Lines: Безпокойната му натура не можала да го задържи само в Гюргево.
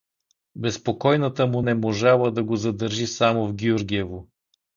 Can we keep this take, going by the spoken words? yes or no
no